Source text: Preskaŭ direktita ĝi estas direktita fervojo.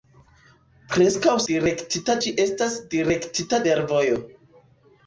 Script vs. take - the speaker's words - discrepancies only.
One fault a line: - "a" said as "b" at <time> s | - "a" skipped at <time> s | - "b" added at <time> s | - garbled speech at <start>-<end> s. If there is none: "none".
none